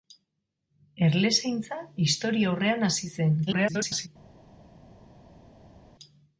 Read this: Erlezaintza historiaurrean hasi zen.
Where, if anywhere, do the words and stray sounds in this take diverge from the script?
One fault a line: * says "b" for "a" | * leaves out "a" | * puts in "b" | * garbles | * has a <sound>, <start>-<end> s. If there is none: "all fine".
* garbles